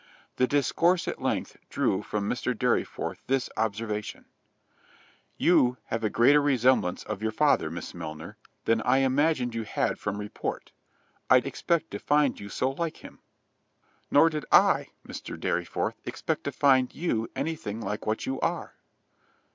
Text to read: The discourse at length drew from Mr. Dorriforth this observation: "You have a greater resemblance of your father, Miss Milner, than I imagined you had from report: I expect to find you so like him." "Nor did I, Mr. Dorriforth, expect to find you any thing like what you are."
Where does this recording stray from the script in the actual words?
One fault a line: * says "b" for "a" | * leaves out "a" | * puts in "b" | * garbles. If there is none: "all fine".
all fine